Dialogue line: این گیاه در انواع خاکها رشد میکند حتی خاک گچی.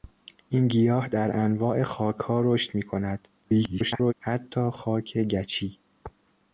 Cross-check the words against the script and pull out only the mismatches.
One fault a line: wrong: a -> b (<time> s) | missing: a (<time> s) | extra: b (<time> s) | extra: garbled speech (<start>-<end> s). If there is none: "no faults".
extra: garbled speech (3.4-4.1 s)